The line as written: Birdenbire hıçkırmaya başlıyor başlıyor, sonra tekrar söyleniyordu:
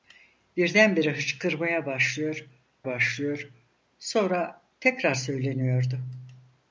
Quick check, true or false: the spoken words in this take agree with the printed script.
true